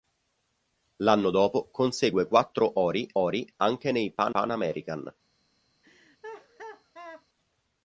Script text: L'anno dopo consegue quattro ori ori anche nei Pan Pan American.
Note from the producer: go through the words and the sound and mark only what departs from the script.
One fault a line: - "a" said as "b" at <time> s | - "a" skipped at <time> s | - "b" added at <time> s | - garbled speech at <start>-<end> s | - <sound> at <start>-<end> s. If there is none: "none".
- laugh at 5.8-7.3 s